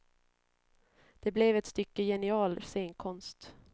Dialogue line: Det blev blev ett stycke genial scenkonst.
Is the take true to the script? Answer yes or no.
no